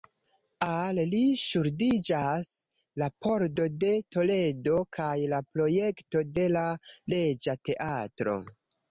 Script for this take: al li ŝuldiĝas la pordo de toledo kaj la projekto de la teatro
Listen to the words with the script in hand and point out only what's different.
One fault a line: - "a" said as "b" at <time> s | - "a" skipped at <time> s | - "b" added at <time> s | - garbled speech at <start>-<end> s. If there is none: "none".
- "reĝa" added at 7.2 s